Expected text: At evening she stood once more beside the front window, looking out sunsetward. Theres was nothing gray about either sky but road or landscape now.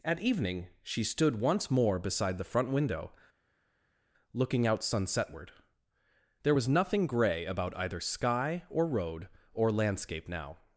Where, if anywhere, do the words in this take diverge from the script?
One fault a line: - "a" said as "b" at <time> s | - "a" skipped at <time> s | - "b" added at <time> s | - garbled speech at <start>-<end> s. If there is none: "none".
- "Theres" said as "There" at 6.4 s
- "but" said as "or" at 8.7 s